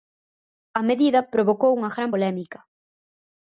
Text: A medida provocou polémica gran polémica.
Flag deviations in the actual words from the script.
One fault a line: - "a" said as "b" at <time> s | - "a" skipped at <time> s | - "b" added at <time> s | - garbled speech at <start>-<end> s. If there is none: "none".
- "polémica" said as "unha" at 1.8 s